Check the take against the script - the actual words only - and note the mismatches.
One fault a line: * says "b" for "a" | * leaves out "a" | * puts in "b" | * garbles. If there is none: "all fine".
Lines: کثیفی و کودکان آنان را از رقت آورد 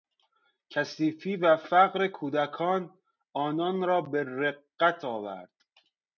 * puts in "فقر"
* says "به" for "از"